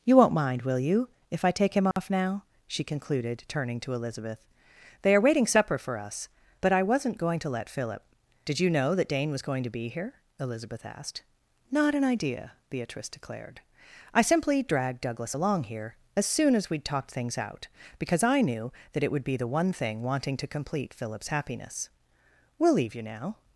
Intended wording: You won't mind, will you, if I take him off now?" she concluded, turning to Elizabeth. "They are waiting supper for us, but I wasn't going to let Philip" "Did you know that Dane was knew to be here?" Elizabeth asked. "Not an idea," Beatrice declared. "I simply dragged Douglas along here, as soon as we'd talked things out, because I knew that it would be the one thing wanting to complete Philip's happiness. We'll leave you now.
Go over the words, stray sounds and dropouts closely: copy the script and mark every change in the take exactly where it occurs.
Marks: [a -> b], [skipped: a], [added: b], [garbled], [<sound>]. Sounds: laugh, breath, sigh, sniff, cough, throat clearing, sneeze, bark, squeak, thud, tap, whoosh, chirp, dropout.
You won't mind, will you, if I take him off [dropout] now?" she concluded, turning to Elizabeth. "They are waiting supper for us, but I wasn't going to let Philip" "Did you know that Dane was [knew -> going] to be here?" Elizabeth asked. "Not an idea," Beatrice declared. "I simply dragged Douglas along here, as soon as we'd talked things out, because I knew that it would be the one thing wanting to complete Philip's happiness. We'll leave you now.